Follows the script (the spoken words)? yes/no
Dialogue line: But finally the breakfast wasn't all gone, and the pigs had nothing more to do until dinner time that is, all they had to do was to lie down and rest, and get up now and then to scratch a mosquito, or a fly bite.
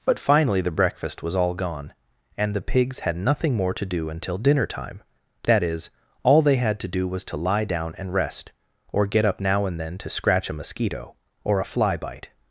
no